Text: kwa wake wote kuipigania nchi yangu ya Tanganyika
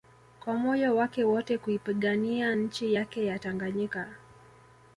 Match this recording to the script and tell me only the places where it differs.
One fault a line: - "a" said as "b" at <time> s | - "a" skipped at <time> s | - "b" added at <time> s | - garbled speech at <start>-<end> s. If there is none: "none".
- "moyo" added at 0.6 s
- "yangu" said as "yake" at 2.9 s